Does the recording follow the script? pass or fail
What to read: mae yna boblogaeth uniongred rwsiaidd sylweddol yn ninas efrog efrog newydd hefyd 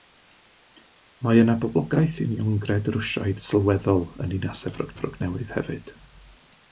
pass